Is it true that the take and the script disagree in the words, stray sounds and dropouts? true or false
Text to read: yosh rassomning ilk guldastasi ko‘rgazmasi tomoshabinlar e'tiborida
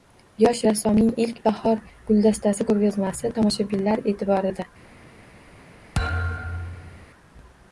true